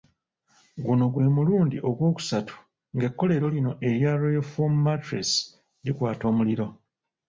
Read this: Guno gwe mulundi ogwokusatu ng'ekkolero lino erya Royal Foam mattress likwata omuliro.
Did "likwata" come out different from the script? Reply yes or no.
no